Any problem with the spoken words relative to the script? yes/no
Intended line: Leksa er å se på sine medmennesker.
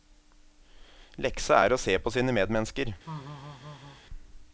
no